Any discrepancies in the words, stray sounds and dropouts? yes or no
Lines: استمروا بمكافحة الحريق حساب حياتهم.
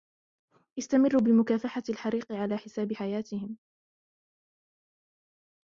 yes